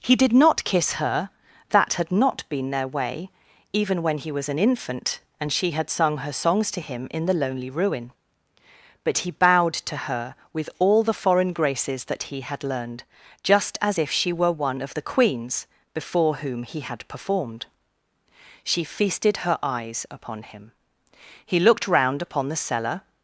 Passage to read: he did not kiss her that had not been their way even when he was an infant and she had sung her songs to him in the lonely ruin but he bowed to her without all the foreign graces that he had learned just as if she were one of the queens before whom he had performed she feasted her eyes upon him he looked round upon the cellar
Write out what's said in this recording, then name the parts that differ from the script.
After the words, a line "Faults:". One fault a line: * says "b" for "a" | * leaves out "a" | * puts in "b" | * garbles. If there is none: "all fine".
he did not kiss her that had not been their way even when he was an infant and she had sung her songs to him in the lonely ruin but he bowed to her with all the foreign graces that he had learned just as if she were one of the queens before whom he had performed she feasted her eyes upon him he looked round upon the cellar
Faults:
* says "with" for "without"